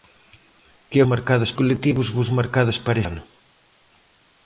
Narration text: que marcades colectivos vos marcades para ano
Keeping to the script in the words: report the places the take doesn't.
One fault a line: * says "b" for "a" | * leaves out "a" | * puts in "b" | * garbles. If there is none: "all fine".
all fine